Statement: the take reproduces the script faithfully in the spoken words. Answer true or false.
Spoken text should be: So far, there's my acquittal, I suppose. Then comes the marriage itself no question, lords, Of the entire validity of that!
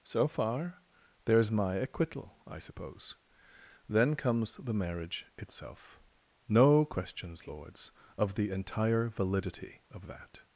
false